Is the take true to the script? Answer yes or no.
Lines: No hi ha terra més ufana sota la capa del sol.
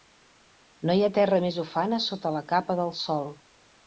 yes